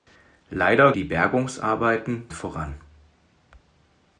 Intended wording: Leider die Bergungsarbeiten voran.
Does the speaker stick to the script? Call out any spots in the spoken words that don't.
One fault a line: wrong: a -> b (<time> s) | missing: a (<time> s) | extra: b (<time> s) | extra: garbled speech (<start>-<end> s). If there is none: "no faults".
no faults